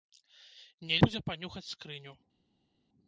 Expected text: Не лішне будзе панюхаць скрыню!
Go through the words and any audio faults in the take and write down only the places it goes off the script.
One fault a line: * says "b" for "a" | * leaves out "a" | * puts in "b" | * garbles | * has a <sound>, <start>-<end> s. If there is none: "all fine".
* leaves out "лішне"